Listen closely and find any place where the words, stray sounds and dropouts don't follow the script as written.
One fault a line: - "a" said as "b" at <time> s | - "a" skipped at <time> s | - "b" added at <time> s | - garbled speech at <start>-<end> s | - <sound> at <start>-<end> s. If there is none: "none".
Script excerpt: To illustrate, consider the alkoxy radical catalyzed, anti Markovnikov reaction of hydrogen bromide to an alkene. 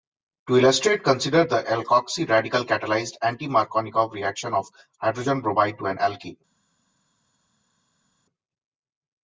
none